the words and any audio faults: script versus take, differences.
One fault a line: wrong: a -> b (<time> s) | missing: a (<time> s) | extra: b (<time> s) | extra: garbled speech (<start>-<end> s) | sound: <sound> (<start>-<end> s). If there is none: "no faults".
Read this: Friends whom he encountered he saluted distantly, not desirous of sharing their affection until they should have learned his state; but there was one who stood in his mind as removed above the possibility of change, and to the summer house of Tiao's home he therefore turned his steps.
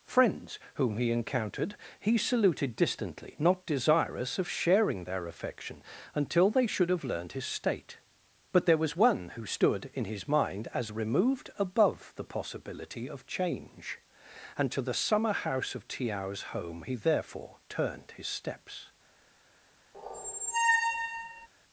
sound: squeak (19.9-21.5 s)